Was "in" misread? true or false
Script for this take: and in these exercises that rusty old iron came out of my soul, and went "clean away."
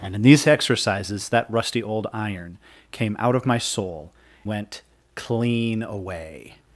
false